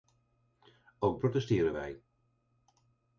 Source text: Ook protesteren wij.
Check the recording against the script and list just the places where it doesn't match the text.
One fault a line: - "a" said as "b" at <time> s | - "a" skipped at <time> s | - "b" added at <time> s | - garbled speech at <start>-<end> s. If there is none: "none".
none